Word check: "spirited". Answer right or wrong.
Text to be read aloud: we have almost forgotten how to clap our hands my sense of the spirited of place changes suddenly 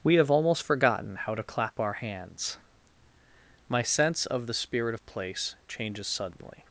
wrong